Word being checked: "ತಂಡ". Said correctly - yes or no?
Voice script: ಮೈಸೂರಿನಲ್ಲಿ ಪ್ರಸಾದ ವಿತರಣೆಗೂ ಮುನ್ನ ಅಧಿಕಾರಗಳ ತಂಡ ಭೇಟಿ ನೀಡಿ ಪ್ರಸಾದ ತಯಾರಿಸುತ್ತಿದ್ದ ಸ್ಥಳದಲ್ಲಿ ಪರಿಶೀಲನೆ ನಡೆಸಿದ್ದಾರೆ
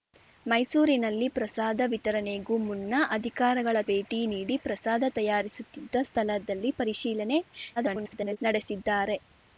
no